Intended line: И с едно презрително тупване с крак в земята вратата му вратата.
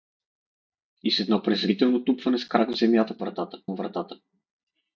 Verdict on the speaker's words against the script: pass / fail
pass